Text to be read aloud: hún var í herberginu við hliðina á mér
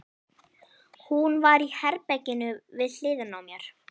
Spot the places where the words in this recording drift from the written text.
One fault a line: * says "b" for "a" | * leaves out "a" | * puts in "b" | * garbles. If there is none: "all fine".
all fine